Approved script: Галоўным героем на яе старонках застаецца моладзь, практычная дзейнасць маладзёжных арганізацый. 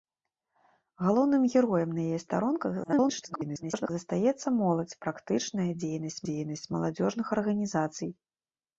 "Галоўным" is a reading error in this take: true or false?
false